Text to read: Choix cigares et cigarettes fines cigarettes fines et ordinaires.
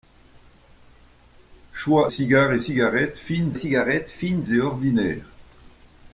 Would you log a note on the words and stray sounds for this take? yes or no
no